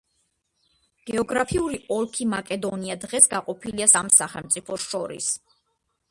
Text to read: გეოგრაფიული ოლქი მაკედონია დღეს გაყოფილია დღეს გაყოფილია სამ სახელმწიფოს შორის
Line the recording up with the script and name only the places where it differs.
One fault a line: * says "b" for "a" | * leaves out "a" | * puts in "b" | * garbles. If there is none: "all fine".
* leaves out "დღეს გაყოფილია"